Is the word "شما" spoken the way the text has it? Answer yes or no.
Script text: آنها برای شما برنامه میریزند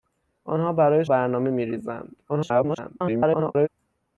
no